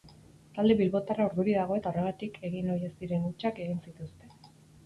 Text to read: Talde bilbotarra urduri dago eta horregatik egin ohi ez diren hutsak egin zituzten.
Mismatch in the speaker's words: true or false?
false